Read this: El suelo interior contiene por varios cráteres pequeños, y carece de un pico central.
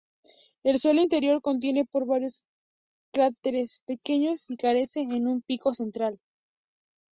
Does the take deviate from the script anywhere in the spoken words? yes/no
no